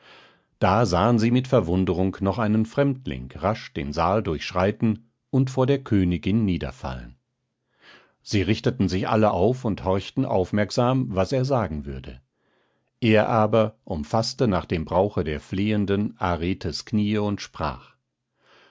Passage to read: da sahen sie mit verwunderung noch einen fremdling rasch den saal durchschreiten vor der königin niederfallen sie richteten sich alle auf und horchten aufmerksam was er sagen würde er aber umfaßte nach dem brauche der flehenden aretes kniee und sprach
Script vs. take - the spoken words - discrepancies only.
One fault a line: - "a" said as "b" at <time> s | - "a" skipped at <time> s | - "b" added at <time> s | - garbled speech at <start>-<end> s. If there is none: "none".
- "und" added at 5.3 s